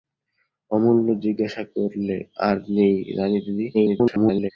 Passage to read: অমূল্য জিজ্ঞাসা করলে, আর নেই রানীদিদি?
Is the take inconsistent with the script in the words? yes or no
yes